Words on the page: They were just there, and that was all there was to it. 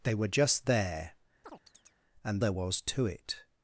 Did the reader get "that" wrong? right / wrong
wrong